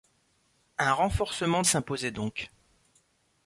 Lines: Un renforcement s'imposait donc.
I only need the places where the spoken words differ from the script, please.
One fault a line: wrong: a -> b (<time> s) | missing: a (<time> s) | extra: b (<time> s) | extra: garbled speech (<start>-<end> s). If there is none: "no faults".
no faults